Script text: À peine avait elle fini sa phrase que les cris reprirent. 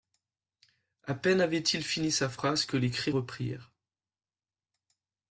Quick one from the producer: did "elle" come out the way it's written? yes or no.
no